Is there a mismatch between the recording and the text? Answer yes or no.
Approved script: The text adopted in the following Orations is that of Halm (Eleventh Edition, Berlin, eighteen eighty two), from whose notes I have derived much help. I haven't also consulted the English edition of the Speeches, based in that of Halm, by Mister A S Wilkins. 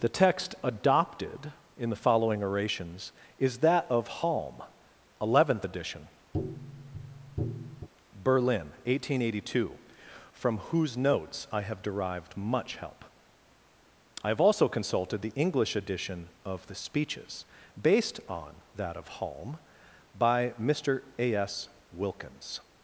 yes